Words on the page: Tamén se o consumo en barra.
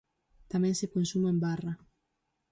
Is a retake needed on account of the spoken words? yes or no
no